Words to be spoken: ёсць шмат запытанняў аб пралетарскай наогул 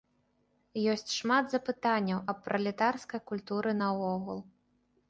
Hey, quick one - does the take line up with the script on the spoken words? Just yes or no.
no